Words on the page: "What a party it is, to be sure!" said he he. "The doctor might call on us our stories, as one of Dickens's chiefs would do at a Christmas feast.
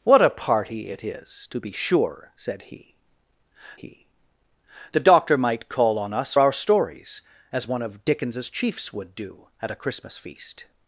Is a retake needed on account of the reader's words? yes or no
no